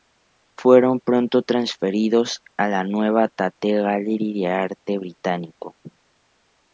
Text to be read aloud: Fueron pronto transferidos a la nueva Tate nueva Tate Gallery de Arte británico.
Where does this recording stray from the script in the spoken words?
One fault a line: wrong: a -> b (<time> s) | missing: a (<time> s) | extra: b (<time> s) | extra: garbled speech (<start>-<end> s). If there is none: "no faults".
missing: nueva Tate (3.7 s)